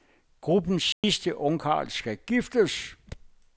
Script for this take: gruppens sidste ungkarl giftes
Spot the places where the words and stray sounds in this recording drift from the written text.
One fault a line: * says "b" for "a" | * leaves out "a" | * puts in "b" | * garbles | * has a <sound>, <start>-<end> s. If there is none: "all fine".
* has a dropout, 0.9-1.0 s
* puts in "skal"